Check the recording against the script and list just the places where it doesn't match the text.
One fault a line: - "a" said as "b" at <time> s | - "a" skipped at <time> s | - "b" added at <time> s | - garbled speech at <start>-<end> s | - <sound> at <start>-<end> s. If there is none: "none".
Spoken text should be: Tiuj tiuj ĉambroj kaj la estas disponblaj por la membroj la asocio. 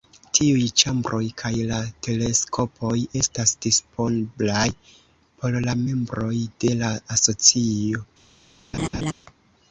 - "tiuj" skipped at 0.6 s
- "teleskopoj" added at 2.1 s
- "de" added at 6.7 s
- laugh at 8.7-9.1 s